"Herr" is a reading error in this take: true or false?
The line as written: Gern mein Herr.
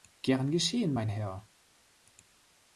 false